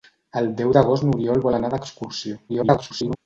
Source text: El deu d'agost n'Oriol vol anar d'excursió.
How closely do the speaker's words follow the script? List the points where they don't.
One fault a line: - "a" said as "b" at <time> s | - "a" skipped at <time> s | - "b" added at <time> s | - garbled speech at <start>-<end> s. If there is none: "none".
- garbled speech at 2.5-3.2 s